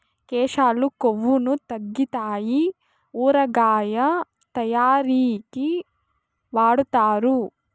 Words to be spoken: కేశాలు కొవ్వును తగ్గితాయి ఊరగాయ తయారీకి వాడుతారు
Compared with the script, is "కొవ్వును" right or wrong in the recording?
right